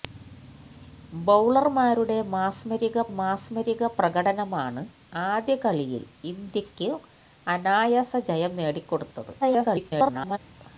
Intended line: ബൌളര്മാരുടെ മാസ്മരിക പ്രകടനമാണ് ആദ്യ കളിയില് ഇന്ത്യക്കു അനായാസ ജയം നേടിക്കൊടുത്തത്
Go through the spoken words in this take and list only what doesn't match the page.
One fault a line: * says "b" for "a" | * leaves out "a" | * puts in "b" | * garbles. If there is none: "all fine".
* puts in "മാസ്മരിക"
* garbles